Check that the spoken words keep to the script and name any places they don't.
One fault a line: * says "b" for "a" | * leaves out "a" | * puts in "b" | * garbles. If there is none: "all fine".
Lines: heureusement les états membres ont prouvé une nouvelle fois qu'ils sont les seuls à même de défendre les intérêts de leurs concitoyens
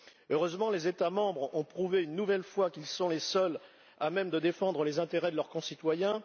all fine